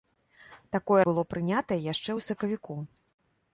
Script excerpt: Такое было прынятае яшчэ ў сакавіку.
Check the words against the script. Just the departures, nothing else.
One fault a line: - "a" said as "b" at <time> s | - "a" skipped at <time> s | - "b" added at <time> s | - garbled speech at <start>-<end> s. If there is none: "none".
none